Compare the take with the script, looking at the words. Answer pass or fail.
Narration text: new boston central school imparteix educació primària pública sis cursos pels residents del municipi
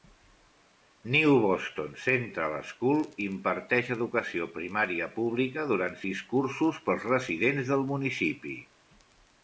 fail